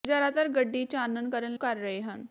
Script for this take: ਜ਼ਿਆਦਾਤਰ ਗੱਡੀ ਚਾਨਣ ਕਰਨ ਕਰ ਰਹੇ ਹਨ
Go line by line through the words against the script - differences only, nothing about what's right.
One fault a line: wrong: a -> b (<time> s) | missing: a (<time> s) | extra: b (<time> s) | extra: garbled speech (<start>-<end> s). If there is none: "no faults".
no faults